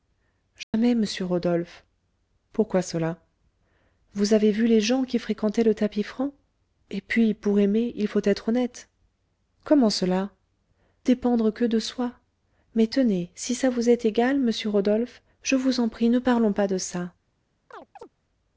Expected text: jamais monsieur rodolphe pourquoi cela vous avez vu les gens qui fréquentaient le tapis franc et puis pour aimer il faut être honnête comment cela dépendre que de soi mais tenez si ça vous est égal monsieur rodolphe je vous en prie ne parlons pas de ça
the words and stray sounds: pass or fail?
fail